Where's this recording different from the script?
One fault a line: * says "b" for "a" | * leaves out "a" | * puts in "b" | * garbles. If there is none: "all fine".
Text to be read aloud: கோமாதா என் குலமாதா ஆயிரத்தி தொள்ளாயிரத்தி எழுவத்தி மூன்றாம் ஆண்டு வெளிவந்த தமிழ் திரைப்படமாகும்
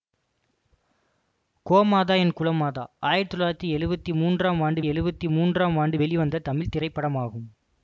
* puts in "எழுவத்தி மூன்றாம் ஆண்டு"